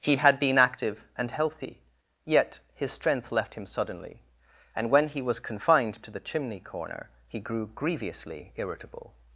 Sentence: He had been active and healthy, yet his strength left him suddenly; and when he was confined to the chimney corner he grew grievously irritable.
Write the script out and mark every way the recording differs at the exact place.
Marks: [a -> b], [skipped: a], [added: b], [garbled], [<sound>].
He had been active and healthy, yet his strength left him suddenly; and when he was confined to the chimney corner he grew grievously irritable.